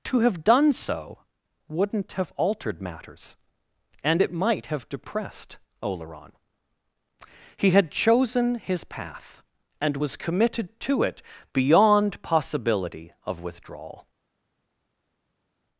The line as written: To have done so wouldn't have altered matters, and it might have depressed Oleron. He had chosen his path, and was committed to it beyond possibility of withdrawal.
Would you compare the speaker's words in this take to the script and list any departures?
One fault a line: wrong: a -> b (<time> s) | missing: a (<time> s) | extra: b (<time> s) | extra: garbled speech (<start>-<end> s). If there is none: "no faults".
no faults